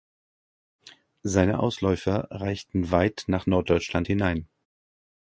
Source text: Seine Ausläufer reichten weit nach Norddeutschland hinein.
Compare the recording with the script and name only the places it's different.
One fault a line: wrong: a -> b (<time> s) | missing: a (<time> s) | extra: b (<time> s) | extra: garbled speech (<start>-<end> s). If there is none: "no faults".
no faults